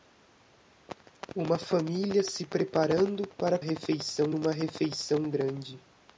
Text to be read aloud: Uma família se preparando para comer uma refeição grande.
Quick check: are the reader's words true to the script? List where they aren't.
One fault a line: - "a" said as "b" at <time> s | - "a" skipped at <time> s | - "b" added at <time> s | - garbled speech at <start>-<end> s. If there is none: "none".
- "comer" said as "refeição" at 3.6 s